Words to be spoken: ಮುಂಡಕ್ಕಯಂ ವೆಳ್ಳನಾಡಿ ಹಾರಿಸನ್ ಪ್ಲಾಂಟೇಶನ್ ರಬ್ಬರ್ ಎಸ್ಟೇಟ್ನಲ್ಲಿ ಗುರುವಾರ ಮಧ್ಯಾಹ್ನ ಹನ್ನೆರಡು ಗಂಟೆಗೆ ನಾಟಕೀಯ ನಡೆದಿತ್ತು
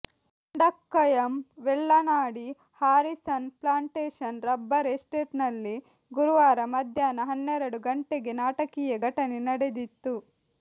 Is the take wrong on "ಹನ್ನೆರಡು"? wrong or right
right